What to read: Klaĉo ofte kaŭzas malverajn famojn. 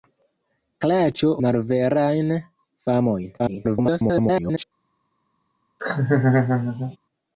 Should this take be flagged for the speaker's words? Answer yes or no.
yes